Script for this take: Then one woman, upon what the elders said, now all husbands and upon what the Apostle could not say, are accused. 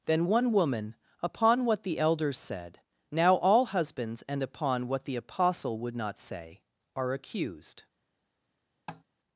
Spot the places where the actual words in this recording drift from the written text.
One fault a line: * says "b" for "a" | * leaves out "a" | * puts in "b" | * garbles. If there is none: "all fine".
* says "would" for "could"